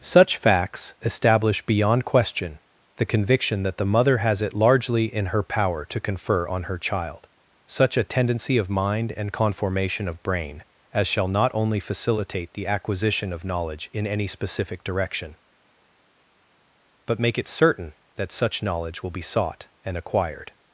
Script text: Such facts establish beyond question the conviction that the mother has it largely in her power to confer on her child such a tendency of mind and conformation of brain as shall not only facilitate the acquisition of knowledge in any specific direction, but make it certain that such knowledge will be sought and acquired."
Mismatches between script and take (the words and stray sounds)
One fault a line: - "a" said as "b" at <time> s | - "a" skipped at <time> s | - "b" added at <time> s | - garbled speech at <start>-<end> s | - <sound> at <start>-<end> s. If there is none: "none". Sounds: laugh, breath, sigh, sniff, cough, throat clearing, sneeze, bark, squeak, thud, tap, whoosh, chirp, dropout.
none